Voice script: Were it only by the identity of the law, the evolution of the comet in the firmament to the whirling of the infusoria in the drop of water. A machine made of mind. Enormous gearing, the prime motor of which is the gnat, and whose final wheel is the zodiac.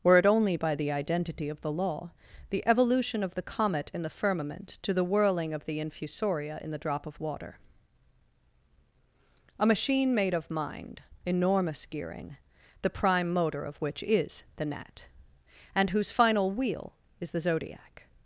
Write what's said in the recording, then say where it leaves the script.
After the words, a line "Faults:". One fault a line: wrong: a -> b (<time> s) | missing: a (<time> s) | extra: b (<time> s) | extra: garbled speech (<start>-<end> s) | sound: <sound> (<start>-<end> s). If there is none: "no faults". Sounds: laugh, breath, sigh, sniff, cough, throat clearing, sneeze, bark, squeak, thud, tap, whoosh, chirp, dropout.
Were it only by the identity of the law, the evolution of the comet in the firmament to the whirling of the infusoria in the drop of water. A machine made of mind. Enormous gearing, the prime motor of which is the gnat, and whose final wheel is the zodiac.
Faults:
no faults